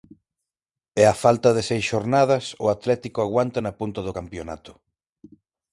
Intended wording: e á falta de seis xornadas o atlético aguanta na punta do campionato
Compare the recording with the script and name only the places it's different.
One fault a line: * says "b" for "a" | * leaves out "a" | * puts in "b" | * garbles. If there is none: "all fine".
all fine